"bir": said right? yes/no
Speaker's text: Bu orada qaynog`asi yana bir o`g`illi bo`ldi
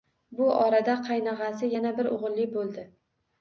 yes